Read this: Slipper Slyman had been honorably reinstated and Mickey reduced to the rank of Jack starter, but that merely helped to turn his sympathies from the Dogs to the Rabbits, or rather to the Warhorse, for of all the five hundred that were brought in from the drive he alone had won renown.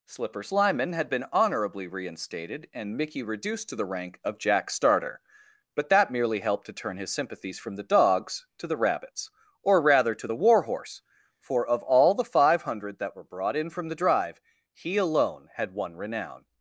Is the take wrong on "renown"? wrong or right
right